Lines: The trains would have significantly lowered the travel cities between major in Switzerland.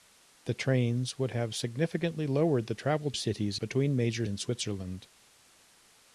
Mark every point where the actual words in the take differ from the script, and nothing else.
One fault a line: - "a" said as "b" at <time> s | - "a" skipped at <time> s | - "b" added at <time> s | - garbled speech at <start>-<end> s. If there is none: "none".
none